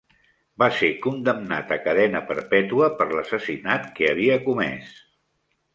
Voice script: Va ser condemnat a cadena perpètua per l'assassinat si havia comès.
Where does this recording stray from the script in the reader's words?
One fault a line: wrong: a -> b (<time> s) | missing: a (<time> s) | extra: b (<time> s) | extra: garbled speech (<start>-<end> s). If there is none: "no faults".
wrong: si -> que (4.0 s)